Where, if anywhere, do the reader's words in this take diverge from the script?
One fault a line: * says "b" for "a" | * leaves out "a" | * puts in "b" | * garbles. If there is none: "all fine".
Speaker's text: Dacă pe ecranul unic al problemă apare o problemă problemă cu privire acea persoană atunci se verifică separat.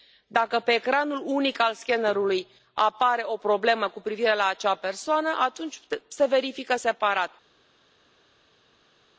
* says "scannerului" for "problemă"
* leaves out "problemă"
* puts in "la"